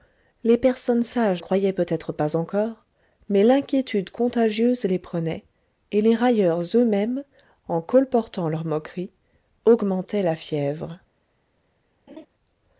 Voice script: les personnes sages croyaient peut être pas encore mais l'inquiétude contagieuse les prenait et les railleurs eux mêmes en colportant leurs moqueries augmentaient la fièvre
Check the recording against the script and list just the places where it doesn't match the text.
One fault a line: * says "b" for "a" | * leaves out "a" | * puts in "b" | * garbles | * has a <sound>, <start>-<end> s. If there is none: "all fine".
* has a laugh, 12.1-12.3 s